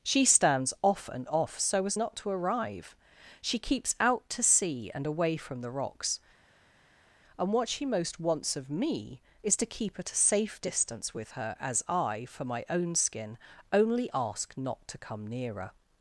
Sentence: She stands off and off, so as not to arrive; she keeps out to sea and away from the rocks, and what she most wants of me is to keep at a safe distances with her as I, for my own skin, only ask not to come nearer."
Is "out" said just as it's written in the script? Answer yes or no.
yes